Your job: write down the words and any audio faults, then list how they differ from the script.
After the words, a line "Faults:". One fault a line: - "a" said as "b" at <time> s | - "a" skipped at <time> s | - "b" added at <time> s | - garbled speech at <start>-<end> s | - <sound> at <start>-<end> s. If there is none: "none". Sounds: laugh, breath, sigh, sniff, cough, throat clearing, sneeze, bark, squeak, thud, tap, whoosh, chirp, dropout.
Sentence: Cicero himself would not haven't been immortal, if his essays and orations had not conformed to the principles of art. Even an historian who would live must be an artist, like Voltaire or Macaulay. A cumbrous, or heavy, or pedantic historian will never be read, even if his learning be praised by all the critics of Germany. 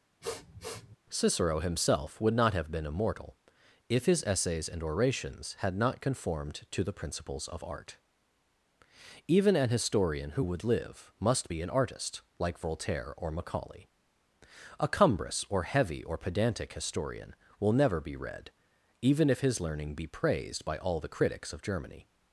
Cicero himself would not have been immortal, if his essays and orations had not conformed to the principles of art. Even an historian who would live must be an artist, like Voltaire or Macaulay. A cumbrous, or heavy, or pedantic historian will never be read, even if his learning be praised by all the critics of Germany.
Faults:
- sniff at 0.2-1.0 s
- "haven't" said as "have" at 2.5 s